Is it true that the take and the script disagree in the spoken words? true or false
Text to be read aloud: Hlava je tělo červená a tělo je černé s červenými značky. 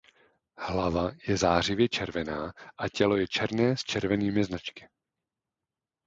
true